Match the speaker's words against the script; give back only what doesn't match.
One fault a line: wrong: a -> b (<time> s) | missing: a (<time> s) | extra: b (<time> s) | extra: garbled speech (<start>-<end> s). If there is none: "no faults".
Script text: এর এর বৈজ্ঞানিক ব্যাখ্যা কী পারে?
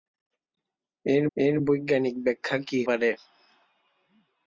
no faults